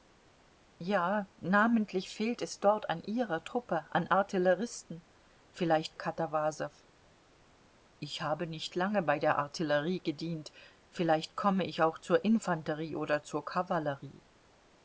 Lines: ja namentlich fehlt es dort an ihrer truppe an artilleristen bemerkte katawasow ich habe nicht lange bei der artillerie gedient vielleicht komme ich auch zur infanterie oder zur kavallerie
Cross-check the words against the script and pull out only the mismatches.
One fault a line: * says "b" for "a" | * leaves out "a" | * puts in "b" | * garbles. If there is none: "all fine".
* says "vielleicht" for "bemerkte"